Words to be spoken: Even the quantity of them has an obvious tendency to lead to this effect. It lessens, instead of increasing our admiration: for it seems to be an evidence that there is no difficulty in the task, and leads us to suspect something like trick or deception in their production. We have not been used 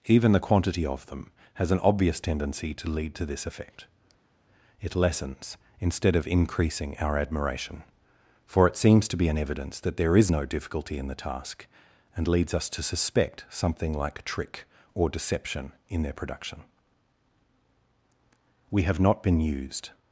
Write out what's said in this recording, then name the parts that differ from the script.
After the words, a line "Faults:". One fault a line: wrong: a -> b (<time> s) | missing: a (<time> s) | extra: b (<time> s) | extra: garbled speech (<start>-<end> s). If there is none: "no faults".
Even the quantity of them has an obvious tendency to lead to this effect. It lessens, instead of increasing our admiration: for it seems to be an evidence that there is no difficulty in the task, and leads us to suspect something like trick or deception in their production. We have not been used
Faults:
no faults